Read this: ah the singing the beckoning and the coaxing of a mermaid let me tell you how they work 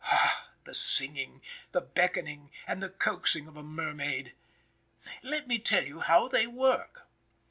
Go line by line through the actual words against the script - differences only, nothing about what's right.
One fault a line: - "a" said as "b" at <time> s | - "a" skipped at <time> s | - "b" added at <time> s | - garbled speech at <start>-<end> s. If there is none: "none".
none